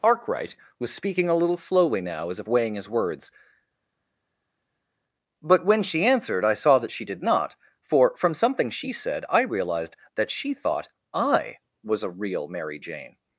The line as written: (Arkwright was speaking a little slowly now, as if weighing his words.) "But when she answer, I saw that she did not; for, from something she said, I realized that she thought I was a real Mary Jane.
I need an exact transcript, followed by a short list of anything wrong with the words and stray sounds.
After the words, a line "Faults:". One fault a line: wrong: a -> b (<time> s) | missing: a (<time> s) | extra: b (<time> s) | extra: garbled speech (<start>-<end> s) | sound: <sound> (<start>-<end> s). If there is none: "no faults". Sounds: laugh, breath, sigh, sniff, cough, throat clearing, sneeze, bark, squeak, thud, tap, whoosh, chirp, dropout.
(Arkwright was speaking a little slowly now, as if weighing his words.) "But when she answered, I saw that she did not; for, from something she said, I realized that she thought I was a real Mary Jane.
Faults:
wrong: answer -> answered (6.0 s)